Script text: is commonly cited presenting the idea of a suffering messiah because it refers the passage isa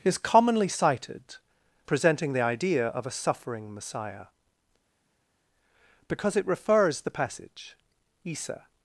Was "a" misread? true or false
false